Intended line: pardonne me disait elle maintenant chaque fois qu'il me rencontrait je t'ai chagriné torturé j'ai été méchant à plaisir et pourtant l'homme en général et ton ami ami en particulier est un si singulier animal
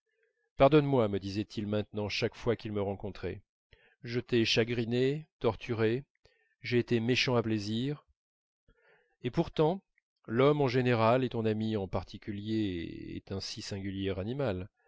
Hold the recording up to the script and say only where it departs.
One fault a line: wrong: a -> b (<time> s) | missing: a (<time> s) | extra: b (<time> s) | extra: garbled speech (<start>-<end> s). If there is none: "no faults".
extra: moi (0.8 s)
wrong: elle -> il (1.4 s)
missing: ami (11.8 s)